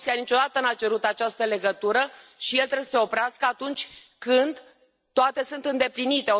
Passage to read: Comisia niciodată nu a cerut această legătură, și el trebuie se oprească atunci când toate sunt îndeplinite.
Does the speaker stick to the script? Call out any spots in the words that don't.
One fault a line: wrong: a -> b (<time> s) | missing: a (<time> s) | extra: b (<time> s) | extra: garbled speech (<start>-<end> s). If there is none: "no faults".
no faults